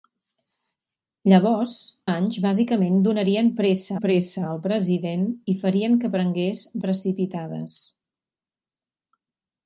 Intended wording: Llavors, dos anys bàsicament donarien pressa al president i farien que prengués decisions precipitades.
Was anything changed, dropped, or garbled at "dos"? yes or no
yes